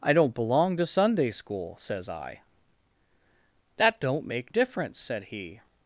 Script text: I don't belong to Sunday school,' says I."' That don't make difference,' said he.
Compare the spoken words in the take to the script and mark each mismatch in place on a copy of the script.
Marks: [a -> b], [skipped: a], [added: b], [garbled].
I don't belong to Sunday school,' says I."' That don't make difference,' said he.